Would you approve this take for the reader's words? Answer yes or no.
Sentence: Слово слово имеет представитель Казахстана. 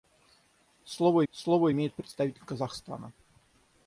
yes